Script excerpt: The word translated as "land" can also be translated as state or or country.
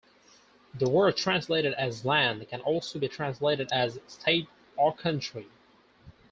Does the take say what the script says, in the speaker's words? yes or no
no